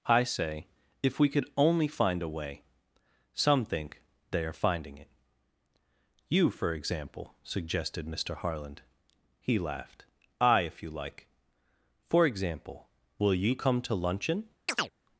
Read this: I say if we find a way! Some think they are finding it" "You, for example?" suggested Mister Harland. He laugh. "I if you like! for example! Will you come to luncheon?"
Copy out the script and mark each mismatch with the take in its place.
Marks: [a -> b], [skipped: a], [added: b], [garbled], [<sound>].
I say if we [added: could only] find a way! Some think they are finding it" "You, for example?" suggested Mister Harland. He [laugh. -> laughed] "I if you like! for example! Will you come to luncheon?" [chirp]